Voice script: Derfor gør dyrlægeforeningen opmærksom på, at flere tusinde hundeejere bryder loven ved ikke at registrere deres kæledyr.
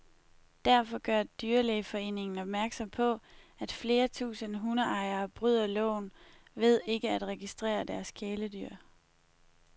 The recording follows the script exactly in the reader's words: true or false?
true